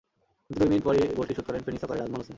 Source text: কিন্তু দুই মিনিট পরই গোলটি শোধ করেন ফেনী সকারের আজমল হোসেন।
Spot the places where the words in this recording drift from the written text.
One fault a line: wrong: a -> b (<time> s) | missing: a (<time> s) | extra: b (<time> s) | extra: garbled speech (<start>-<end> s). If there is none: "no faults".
no faults